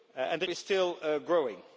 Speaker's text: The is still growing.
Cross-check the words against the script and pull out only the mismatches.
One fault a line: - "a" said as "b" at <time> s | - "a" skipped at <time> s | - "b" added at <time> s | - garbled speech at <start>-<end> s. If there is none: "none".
none